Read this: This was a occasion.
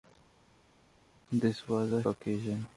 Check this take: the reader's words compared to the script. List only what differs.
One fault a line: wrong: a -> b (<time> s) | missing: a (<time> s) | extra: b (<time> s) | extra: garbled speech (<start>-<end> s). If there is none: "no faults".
no faults